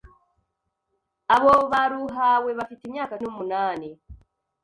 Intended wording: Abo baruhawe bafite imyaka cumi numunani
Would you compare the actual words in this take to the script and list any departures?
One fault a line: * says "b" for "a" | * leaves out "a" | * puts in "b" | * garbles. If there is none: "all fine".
* leaves out "cumi"